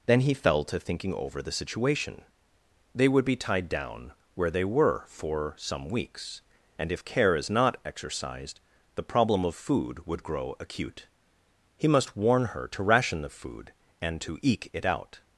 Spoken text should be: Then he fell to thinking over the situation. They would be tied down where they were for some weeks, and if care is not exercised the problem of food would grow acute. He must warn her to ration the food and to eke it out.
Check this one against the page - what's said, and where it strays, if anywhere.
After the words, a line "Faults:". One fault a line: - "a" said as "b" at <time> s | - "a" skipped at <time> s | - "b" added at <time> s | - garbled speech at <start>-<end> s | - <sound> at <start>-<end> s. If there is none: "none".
Then he fell to thinking over the situation. They would be tied down where they were for some weeks, and if care is not exercised the problem of food would grow acute. He must warn her to ration the food and to eke it out.
Faults:
none